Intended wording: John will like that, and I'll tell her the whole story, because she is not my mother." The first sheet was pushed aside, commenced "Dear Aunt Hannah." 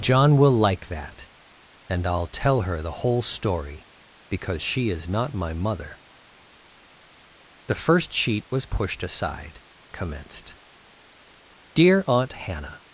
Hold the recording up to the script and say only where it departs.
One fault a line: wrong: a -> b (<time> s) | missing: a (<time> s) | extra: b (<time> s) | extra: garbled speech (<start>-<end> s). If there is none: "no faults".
no faults